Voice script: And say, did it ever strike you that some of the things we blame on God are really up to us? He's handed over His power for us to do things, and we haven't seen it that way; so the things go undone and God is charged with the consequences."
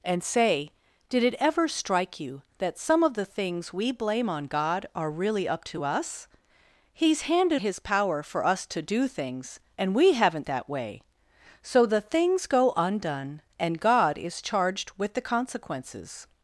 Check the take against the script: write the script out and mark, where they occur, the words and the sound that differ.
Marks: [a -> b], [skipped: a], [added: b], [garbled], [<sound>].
And say, did it ever strike you that some of the things we blame on God are really up to us? He's handed [skipped: over] His power for us to do things, and we haven't [skipped: seen it] that way; so the things go undone and God is charged with the consequences."